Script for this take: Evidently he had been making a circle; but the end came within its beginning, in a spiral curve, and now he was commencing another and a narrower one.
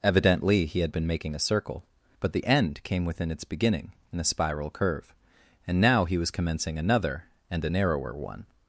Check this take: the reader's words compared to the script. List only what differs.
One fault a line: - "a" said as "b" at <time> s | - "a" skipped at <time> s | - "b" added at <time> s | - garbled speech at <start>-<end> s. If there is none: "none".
none